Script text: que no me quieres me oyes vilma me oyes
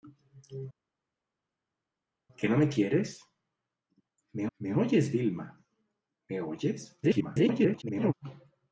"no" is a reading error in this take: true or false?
false